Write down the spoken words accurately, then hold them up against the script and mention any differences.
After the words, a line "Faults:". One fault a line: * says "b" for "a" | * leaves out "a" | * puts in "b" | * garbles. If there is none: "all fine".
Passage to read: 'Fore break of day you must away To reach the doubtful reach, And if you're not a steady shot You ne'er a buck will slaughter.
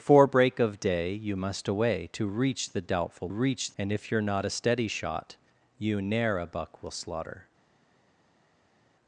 'Fore break of day you must away To reach the doubtful reach, And if you're not a steady shot You ne'er a buck will slaughter.
Faults:
all fine